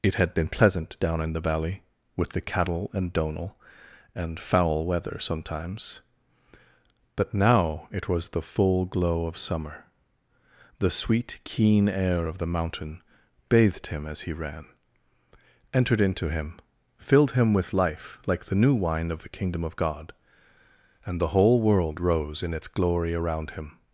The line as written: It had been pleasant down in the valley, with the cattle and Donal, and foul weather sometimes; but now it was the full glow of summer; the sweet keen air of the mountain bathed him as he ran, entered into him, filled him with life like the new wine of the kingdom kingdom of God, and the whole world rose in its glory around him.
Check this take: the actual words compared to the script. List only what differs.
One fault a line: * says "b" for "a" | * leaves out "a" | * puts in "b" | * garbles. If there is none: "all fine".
* leaves out "kingdom"